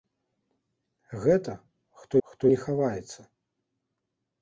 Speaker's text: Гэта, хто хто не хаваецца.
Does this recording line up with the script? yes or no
yes